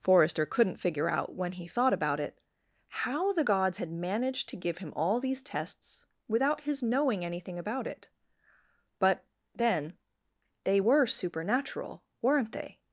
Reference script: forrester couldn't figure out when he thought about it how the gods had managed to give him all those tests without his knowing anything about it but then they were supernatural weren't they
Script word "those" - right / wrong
wrong